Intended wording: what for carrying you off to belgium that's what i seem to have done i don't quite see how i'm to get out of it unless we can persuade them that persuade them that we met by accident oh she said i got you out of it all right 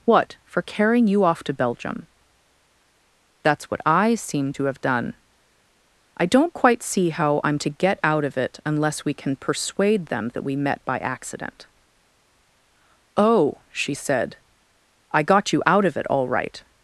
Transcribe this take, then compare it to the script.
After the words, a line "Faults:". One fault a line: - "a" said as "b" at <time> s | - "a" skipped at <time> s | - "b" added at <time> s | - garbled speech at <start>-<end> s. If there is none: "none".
what for carrying you off to belgium that's what i seem to have done i don't quite see how i'm to get out of it unless we can persuade them that we met by accident oh she said i got you out of it all right
Faults:
- "persuade them that" skipped at 10.4 s